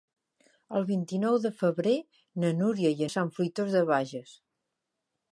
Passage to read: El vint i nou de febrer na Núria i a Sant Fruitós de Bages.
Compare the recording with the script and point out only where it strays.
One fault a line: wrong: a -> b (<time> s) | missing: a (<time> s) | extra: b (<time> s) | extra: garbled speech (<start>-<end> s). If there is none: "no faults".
no faults